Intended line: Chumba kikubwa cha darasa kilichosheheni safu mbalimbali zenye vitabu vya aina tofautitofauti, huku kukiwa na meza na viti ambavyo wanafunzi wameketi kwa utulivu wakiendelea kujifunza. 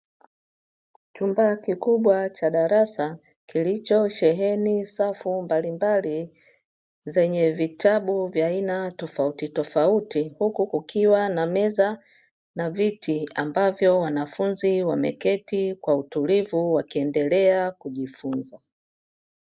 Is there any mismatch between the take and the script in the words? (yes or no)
no